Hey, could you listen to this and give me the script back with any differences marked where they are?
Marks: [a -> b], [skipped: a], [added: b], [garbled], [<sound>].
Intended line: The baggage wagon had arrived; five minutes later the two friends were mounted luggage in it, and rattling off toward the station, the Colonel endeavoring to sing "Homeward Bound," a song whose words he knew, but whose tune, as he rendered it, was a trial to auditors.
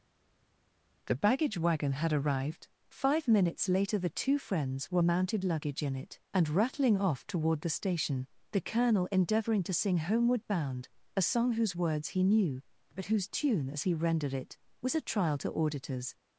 The baggage wagon had arrived; five minutes later the two friends were mounted luggage in it, and rattling off toward the station, the Colonel endeavoring to sing "Homeward Bound," a song whose words he knew, but whose tune, as he rendered it, was a trial to auditors.